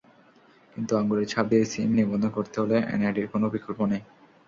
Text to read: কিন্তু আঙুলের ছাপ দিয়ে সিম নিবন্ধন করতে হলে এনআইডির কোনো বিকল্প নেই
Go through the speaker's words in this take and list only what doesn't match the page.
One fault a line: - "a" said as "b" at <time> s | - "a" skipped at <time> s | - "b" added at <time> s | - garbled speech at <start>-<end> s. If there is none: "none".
none